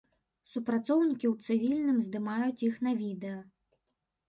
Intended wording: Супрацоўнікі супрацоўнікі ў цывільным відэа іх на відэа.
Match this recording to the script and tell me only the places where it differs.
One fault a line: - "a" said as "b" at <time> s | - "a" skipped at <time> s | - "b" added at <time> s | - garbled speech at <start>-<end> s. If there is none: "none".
- "супрацоўнікі" skipped at 1.3 s
- "відэа" said as "здымаюць" at 2.1 s